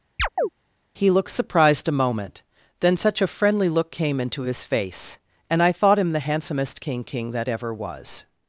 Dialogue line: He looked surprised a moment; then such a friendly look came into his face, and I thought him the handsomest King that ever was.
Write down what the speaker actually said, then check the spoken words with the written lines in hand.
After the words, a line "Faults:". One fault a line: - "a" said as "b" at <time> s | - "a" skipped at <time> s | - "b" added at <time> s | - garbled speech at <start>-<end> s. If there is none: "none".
He looked surprised a moment; then such a friendly look came into his face, and I thought him the handsomest King King that ever was.
Faults:
- "King" added at 7.0 s